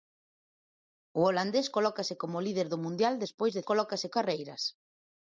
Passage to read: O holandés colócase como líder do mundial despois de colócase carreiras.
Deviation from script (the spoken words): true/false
false